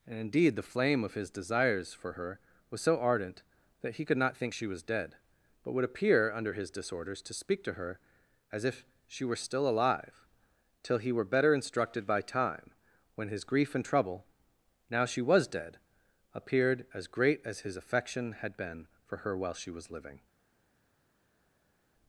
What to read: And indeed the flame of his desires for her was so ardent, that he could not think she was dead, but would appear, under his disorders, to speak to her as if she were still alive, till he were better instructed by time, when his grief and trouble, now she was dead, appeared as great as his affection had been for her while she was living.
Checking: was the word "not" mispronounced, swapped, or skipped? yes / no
no